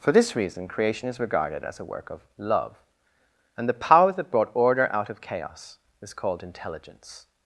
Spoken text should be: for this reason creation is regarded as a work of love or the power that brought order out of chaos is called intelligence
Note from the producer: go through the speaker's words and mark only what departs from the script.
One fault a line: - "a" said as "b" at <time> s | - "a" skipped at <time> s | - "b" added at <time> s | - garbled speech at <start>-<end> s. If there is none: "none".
- "or" said as "and" at 3.5 s